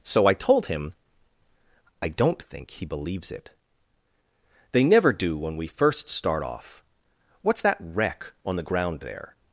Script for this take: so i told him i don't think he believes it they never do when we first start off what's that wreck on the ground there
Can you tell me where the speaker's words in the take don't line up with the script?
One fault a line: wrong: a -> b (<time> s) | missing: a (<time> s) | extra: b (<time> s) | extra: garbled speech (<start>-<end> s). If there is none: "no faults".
no faults